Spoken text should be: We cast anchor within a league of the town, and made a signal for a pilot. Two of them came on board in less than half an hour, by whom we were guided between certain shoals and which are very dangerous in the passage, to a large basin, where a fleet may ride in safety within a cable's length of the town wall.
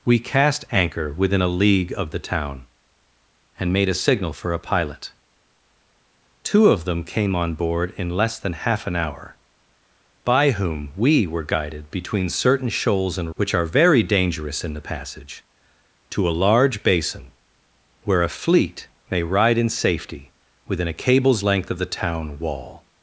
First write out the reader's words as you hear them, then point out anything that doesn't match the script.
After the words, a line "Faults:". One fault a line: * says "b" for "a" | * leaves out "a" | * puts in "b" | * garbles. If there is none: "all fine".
We cast anchor within a league of the town, and made a signal for a pilot. Two of them came on board in less than half an hour, by whom we were guided between certain shoals and which are very dangerous in the passage, to a large basin, where a fleet may ride in safety within a cable's length of the town wall.
Faults:
all fine